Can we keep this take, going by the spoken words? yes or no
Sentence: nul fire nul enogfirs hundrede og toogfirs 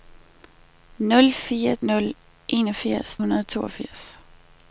yes